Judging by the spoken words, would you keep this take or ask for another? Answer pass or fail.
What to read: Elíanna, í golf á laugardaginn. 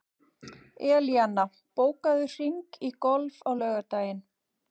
fail